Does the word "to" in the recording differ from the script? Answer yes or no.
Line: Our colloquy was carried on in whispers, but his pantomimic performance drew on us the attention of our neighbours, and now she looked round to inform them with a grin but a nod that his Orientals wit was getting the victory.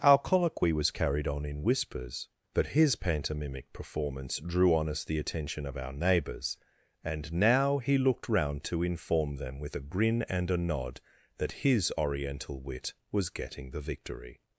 no